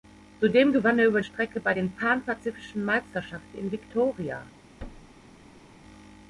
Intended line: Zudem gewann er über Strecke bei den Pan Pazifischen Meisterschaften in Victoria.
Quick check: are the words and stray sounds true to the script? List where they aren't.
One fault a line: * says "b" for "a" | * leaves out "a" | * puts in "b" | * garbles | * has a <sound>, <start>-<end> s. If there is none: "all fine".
* has a thud, 4.8-5.8 s